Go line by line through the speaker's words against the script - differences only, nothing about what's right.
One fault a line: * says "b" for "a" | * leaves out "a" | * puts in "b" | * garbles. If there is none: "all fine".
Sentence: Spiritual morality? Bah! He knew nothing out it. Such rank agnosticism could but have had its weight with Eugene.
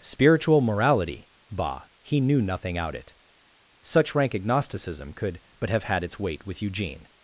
all fine